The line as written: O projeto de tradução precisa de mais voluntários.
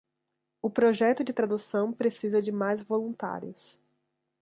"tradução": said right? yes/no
yes